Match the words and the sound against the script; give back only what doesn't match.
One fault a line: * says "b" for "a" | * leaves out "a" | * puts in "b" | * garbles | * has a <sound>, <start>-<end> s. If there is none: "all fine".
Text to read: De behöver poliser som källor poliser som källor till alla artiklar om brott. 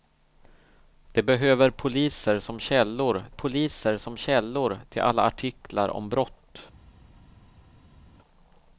all fine